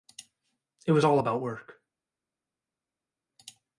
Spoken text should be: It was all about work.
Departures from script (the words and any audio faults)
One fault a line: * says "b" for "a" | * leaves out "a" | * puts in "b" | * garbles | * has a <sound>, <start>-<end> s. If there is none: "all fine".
all fine